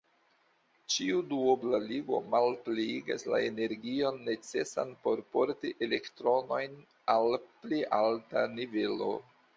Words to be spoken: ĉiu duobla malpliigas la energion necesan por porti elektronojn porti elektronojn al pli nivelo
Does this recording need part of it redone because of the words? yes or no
yes